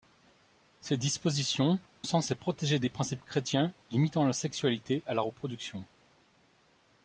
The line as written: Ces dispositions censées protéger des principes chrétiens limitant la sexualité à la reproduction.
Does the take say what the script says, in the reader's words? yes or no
yes